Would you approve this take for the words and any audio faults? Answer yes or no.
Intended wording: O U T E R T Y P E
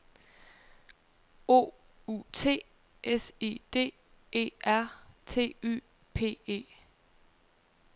no